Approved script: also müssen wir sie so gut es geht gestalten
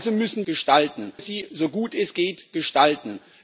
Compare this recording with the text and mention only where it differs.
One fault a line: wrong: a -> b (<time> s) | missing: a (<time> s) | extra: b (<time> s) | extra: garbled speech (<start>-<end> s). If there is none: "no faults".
wrong: wir -> gestalten (0.4 s)